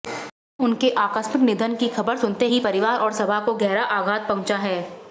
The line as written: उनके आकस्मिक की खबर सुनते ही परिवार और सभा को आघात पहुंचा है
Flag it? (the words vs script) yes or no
yes